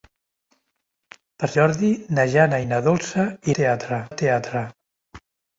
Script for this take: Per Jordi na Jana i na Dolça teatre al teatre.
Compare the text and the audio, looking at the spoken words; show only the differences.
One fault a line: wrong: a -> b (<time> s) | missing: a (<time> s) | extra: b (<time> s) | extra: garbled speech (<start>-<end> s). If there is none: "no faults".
no faults